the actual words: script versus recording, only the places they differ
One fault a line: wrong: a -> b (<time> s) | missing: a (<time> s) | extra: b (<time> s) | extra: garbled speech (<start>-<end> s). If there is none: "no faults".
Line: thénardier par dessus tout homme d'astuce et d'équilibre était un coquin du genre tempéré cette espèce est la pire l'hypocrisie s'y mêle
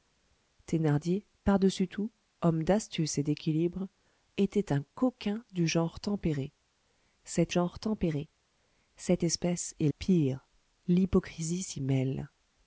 extra: genre tempéré cette (7.5 s)
missing: la (9.9 s)